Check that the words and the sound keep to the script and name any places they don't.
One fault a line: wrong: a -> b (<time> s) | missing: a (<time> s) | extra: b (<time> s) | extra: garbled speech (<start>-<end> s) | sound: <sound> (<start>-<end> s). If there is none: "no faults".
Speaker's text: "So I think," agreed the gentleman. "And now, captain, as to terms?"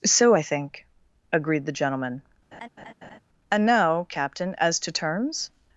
sound: laugh (2.5-3.2 s)